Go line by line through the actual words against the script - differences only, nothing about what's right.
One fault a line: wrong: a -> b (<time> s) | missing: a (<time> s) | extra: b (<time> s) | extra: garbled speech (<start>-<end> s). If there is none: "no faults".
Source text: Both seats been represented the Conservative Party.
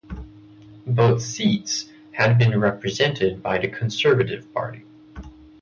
extra: had (2.1 s)
extra: by (3.4 s)